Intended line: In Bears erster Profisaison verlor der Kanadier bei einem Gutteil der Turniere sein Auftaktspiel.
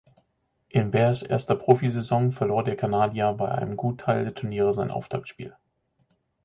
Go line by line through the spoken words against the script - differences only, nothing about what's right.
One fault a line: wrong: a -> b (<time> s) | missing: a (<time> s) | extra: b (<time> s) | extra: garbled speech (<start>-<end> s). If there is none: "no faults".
no faults